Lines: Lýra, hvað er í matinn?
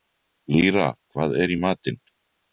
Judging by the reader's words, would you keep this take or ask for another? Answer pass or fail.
pass